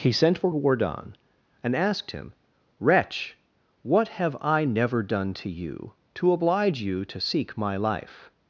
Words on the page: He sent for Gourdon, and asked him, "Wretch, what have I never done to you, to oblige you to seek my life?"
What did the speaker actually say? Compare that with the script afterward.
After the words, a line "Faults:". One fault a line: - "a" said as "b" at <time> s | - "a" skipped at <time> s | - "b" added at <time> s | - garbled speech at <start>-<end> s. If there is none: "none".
He sent for Gourdon, and asked him, "Wretch, what have I never done to you, to oblige you to seek my life?"
Faults:
none